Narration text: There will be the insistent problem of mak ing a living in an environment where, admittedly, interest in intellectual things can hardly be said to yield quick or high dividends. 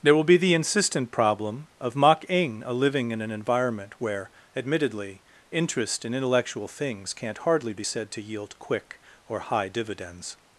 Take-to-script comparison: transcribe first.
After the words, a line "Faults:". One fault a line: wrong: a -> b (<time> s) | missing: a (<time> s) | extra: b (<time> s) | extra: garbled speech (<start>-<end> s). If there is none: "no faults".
There will be the insistent problem of mak ing a living in an environment where, admittedly, interest in intellectual things can't hardly be said to yield quick or high dividends.
Faults:
wrong: can -> can't (7.1 s)